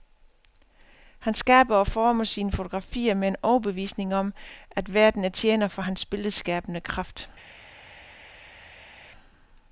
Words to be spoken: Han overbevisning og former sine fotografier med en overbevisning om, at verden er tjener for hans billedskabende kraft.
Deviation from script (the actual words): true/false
true